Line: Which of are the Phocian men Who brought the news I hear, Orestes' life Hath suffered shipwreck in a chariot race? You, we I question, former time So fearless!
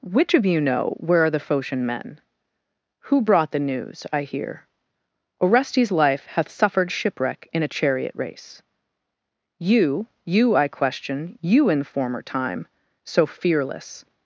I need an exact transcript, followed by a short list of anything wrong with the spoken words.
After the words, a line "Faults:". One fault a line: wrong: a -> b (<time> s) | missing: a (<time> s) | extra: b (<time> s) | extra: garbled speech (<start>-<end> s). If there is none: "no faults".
Which of you know where are the Phocian men Who brought the news I hear, Orestes' life Hath suffered shipwreck in a chariot race? You, you I question, you in former time So fearless!
Faults:
extra: you know where (0.5 s)
wrong: we -> you (10.2 s)
extra: you in (11.4 s)